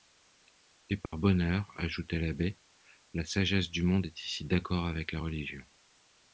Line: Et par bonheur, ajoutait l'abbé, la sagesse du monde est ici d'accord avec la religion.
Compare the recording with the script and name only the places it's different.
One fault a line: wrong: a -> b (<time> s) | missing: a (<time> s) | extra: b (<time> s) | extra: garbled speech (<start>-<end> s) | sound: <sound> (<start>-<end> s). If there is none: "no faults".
sound: dropout (1.1-1.1 s)